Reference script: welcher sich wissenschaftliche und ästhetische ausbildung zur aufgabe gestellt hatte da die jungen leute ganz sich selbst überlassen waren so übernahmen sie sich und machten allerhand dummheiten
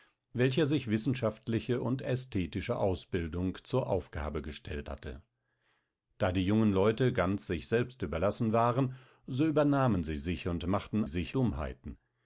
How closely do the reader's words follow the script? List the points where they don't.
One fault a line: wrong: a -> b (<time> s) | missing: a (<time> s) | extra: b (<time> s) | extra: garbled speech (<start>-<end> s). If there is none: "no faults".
wrong: allerhand -> sich (11.1 s)